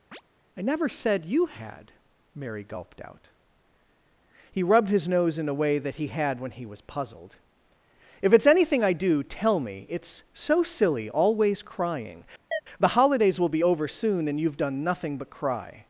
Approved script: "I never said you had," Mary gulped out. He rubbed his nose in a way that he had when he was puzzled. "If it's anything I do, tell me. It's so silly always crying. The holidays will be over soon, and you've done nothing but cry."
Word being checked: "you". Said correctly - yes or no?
yes